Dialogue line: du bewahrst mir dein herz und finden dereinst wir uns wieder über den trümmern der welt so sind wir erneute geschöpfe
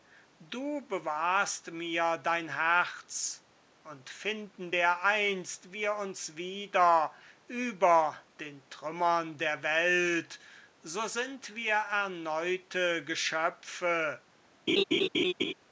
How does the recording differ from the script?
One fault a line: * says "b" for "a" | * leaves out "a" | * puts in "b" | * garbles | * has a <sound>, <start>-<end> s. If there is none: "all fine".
* has a laugh, 14.7-15.5 s